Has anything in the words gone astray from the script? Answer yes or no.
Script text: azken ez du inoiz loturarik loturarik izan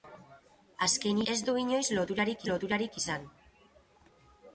no